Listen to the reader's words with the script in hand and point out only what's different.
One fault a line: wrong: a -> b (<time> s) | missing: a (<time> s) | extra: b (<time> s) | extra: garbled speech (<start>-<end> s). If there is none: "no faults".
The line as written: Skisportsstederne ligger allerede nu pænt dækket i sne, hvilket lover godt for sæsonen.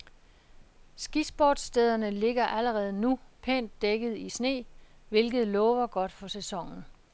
no faults